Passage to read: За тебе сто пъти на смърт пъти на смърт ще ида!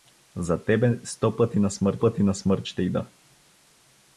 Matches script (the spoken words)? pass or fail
pass